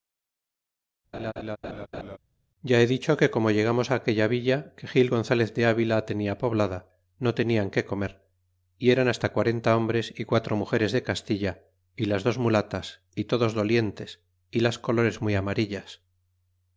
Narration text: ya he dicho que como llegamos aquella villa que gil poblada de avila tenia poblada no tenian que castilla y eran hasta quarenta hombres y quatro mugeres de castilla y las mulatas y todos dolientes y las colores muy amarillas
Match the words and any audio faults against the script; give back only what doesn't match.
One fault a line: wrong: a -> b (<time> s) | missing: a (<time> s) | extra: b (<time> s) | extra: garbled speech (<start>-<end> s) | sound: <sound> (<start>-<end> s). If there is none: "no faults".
sound: laugh (1.1-2.2 s)
wrong: poblada -> gonzalez (5.1 s)
wrong: castilla -> comer (7.9 s)
extra: dos (12.2 s)